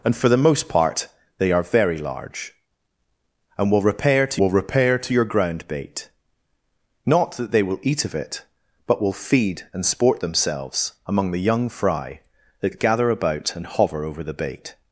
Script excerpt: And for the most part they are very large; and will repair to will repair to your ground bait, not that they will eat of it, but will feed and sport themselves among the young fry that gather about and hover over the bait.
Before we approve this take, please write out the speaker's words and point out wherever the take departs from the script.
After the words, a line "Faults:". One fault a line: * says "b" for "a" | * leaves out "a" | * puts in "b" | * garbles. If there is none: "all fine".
And for the most part they are very large; and will repair to will repair to your ground bait, not that they will eat of it, but will feed and sport themselves among the young fry that gather about and hover over the bait.
Faults:
all fine